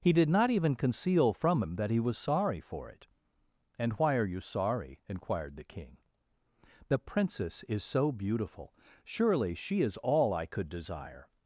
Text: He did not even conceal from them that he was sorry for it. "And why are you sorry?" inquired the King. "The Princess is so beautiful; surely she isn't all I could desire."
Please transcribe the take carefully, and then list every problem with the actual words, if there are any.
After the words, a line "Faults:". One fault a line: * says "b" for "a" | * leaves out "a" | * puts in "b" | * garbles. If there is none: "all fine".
He did not even conceal from him that he was sorry for it. "And why are you sorry?" inquired the King. "The Princess is so beautiful; surely she is all I could desire."
Faults:
* says "him" for "them"
* says "is" for "isn't"